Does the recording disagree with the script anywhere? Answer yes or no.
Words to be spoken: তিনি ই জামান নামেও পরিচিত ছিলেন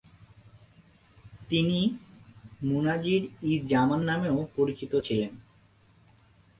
yes